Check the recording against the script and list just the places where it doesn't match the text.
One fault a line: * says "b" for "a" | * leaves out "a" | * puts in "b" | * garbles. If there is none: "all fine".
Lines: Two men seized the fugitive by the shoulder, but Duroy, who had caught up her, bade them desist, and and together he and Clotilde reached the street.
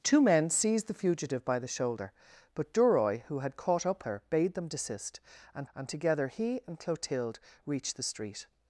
all fine